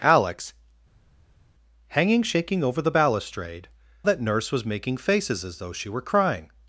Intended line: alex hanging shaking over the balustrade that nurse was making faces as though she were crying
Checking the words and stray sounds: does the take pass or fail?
pass